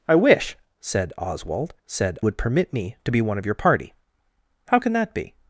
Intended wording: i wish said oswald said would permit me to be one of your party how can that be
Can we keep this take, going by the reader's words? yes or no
yes